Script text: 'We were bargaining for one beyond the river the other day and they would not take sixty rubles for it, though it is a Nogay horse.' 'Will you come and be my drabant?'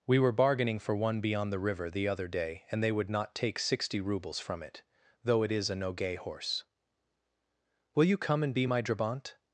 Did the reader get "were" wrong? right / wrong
right